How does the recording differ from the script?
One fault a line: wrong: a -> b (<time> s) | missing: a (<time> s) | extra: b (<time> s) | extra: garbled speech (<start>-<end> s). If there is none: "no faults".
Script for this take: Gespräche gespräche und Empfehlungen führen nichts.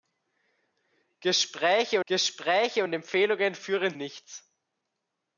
no faults